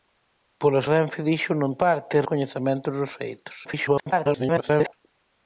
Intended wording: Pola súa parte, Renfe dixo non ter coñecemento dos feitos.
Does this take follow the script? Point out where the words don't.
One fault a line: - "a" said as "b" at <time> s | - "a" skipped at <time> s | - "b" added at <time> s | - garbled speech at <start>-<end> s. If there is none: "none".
- "súa parte" skipped at 0.8 s
- "ter" said as "parte" at 1.8 s
- garbled speech at 3.6-4.9 s